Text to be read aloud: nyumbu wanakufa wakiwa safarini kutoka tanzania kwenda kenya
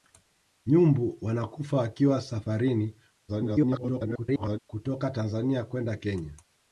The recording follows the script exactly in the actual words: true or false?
false